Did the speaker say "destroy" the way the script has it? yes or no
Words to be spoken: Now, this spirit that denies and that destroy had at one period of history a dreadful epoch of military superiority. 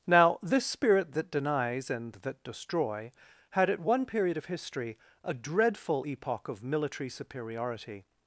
yes